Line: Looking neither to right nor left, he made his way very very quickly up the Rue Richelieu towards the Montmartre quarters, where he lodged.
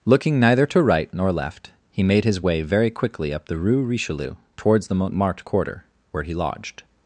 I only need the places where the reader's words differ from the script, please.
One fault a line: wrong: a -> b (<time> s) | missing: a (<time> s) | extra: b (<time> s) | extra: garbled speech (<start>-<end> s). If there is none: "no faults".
missing: very (2.9 s)
wrong: quarters -> quarter (5.4 s)